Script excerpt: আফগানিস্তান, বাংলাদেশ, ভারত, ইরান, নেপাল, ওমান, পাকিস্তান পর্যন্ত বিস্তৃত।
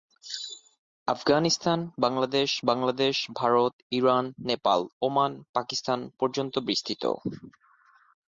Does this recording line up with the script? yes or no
no